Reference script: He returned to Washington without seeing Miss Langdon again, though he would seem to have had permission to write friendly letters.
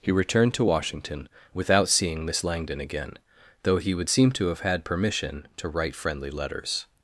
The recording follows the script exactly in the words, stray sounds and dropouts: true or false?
true